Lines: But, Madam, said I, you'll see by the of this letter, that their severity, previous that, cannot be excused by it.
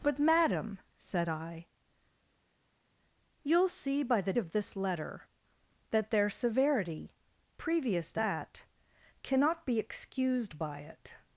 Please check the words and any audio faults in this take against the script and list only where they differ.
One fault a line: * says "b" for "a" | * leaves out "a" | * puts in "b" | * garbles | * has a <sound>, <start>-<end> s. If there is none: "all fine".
all fine